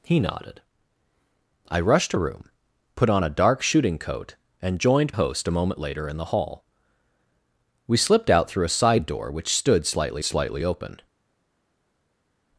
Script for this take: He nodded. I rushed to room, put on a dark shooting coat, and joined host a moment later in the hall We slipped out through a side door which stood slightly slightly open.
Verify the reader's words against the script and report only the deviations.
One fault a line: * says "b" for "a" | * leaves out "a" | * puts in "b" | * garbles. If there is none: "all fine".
all fine